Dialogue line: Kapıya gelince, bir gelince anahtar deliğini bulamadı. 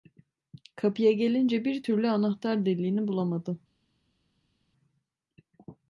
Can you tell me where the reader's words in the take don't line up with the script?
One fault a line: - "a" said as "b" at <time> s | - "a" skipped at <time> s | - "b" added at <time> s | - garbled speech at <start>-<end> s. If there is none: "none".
- "gelince" said as "türlü" at 1.8 s